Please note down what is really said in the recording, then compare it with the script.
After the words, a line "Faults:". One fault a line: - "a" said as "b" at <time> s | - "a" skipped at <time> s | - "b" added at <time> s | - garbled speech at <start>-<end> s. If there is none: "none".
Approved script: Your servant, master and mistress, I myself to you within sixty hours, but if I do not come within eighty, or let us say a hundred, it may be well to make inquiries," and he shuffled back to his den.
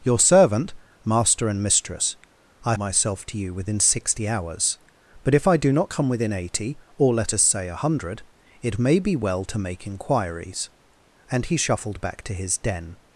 Your servant, master and mistress, I myself to you within sixty hours, but if I do not come within eighty, or let us say a hundred, it may be well to make inquiries," and he shuffled back to his den.
Faults:
none